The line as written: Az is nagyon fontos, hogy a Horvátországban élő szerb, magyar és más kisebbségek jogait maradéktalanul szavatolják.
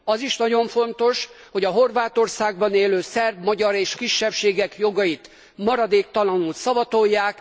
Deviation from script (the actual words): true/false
true